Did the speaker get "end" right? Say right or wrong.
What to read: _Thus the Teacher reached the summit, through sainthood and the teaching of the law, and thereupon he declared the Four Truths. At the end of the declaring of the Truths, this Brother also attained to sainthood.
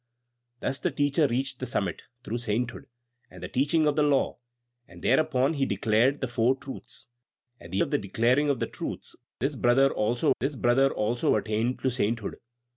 wrong